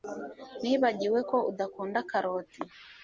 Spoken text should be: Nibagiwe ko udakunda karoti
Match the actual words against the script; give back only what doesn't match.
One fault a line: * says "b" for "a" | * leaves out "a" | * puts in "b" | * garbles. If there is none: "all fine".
all fine